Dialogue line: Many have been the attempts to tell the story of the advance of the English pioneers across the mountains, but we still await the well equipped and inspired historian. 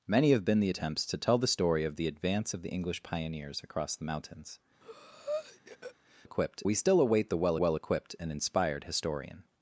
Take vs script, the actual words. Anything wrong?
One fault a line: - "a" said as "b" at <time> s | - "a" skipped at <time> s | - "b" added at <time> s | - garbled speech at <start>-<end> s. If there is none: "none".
- "but" said as "equipped" at 6.2 s
- "well" added at 7.6 s